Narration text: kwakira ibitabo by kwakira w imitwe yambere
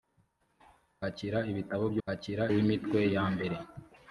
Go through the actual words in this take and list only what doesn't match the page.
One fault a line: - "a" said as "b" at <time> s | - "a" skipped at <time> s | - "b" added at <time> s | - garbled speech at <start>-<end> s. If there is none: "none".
none